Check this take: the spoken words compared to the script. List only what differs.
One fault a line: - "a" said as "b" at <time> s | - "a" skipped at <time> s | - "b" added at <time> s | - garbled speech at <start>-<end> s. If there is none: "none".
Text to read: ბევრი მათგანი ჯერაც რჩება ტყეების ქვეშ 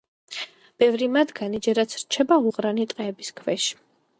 - "უღრანი" added at 2.5 s